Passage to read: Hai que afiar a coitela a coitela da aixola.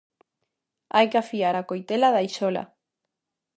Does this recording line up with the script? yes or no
no